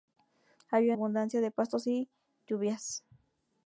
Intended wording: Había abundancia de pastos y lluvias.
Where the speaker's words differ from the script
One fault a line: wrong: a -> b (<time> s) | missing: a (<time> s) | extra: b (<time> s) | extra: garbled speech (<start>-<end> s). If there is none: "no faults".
no faults